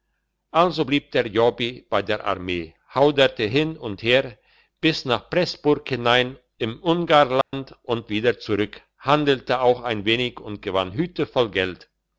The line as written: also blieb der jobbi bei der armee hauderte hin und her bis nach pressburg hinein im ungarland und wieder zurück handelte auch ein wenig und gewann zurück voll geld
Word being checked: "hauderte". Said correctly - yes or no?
yes